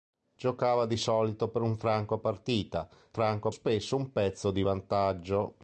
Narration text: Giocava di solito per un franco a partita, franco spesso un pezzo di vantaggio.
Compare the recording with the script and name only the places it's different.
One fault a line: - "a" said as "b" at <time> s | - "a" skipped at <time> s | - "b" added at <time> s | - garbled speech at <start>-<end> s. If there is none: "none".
none